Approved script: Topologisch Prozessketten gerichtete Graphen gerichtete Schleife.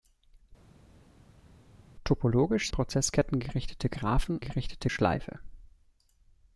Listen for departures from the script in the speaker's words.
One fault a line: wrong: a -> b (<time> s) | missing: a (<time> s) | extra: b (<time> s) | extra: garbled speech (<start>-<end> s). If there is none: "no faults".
no faults